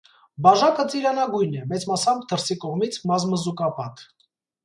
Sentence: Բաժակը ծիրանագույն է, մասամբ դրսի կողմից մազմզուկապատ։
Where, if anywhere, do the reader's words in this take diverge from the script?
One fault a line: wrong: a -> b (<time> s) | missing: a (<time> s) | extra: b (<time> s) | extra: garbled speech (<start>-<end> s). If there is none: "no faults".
extra: մեծ (1.7 s)